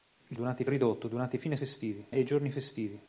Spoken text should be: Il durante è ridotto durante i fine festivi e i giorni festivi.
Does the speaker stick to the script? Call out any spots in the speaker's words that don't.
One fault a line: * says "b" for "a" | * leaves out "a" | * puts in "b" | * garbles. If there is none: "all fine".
all fine